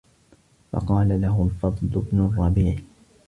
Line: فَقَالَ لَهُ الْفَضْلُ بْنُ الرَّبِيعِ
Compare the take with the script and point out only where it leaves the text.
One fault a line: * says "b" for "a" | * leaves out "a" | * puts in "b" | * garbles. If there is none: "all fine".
all fine